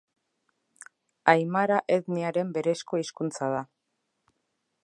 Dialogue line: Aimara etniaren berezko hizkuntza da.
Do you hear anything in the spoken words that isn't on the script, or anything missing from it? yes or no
no